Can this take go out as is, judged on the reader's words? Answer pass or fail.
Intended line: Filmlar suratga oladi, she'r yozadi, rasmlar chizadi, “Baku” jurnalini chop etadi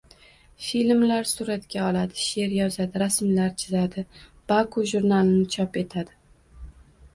pass